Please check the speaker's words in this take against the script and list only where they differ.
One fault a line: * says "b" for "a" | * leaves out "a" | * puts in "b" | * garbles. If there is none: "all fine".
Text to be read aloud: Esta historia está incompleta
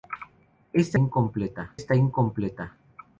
* says "incompleta" for "historia"